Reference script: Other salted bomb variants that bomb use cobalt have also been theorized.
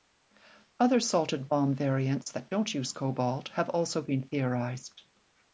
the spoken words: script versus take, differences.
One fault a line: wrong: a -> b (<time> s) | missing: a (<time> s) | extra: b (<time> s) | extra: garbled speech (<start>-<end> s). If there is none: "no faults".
wrong: bomb -> don't (2.5 s)